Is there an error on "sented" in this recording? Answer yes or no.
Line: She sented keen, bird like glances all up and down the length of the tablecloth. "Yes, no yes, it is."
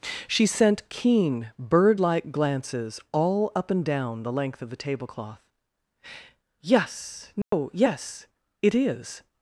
yes